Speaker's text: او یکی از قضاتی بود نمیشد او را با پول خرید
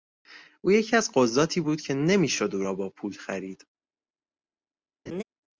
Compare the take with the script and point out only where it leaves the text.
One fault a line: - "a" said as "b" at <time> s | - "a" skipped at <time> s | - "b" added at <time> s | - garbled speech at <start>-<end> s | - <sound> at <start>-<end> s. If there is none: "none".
- "که" added at 1.8 s
- laugh at 5.1-5.2 s